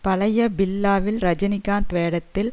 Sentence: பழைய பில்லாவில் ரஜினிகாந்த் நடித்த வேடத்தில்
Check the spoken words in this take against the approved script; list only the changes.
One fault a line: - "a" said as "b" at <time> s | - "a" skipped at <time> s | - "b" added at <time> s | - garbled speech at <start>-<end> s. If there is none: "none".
- "நடித்த" skipped at 1.9 s